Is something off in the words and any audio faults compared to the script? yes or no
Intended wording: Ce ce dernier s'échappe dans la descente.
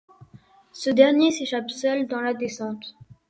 yes